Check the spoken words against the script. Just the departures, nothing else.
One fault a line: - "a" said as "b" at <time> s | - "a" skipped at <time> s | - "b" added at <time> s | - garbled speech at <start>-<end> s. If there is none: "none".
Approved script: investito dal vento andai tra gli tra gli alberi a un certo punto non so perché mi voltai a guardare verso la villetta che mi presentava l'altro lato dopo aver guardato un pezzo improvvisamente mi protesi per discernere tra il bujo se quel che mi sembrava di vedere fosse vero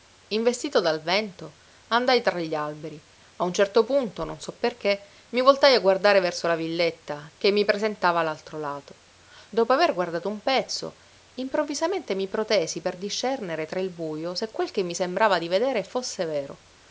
- "tra gli" skipped at 2.5 s